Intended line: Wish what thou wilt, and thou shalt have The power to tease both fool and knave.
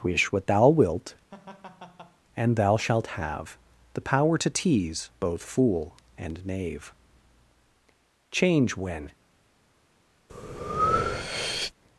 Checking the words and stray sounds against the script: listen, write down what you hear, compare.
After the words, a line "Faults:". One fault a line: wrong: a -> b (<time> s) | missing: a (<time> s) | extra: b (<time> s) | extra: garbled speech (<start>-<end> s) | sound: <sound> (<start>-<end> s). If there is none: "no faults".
Wish what thou wilt, and thou shalt have The power to tease both fool and knave. Change when
Faults:
sound: laugh (1.3-2.2 s)
extra: Change when (8.3 s)
sound: breath (10.3-11.7 s)